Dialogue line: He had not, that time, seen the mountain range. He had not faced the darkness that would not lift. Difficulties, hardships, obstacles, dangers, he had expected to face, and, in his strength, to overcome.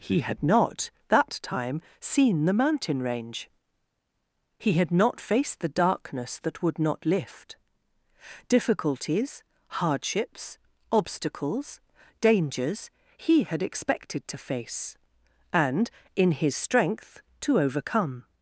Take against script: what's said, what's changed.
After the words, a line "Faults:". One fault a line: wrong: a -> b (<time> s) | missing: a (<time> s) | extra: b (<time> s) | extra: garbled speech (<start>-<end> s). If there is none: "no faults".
He had not, that time, seen the mountain range. He had not faced the darkness that would not lift. Difficulties, hardships, obstacles, dangers, he had expected to face, and, in his strength, to overcome.
Faults:
no faults